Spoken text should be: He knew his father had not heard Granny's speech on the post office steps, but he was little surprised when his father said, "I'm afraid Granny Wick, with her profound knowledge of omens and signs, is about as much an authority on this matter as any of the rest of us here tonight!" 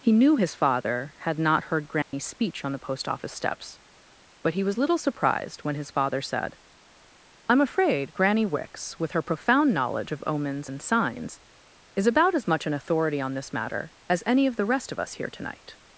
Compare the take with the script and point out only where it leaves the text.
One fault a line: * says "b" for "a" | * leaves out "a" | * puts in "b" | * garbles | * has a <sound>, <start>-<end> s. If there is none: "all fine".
* has a dropout, 2.0-2.1 s
* says "Wicks" for "Wick"